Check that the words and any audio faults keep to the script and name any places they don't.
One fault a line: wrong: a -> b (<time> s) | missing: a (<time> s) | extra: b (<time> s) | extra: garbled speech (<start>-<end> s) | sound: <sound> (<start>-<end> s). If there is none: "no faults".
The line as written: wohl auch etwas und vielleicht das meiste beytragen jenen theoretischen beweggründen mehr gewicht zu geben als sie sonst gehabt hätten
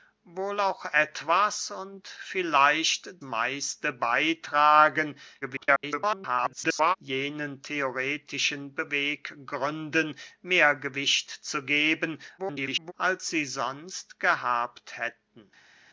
missing: das (3.2 s)
extra: garbled speech (5.4-7.0 s)
extra: garbled speech (12.4-12.9 s)